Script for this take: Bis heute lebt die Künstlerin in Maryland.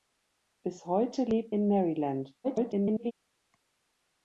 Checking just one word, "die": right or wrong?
wrong